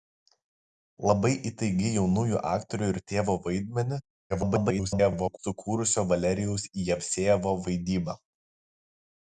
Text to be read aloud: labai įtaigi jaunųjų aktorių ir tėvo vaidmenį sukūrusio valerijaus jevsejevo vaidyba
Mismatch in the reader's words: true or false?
true